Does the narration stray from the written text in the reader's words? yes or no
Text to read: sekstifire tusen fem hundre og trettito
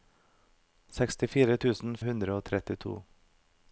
yes